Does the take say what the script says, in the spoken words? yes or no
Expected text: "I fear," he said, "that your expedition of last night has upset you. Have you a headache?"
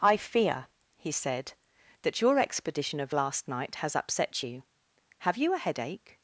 yes